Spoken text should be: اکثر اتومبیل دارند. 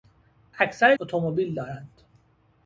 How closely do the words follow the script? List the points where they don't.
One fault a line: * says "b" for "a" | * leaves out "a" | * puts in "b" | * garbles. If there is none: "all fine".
all fine